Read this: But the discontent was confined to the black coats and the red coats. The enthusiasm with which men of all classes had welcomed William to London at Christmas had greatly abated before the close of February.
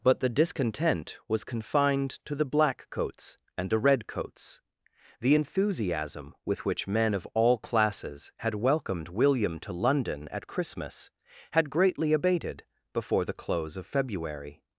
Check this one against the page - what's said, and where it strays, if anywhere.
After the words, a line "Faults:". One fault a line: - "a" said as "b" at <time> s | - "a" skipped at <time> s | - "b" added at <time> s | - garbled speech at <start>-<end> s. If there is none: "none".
But the discontent was confined to the black coats and the red coats. The enthusiasm with which men of all classes had welcomed William to London at Christmas had greatly abated before the close of February.
Faults:
none